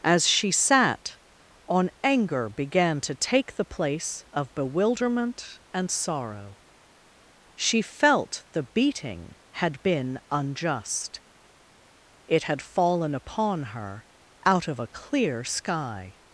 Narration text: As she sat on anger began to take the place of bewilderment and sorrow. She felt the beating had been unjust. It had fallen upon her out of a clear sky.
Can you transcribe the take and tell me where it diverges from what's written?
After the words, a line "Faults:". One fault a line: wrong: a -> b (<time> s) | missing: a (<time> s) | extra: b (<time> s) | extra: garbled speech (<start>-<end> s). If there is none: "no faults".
As she sat on anger began to take the place of bewilderment and sorrow. She felt the beating had been unjust. It had fallen upon her out of a clear sky.
Faults:
no faults